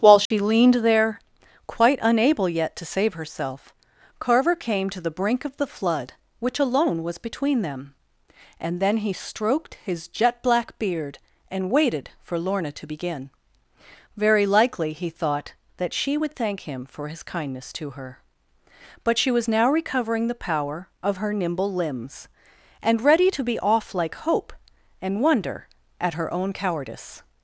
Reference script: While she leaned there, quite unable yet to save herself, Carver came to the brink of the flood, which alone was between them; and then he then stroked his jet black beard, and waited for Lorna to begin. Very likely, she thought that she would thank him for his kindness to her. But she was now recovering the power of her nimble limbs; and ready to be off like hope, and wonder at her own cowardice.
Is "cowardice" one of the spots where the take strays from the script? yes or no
no